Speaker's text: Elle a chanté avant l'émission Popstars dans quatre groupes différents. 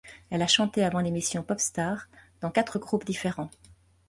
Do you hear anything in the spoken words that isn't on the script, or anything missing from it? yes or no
no